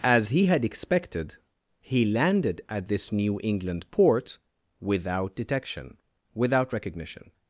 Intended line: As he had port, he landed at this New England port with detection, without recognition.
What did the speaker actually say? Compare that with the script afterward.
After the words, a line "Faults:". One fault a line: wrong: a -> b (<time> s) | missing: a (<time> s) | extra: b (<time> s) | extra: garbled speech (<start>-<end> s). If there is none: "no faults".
As he had expected, he landed at this New England port without detection, without recognition.
Faults:
wrong: port -> expected (0.7 s)
wrong: with -> without (4.8 s)